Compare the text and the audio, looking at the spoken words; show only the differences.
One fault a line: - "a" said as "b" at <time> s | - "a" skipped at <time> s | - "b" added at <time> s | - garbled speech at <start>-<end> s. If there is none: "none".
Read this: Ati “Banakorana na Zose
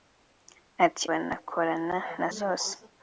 none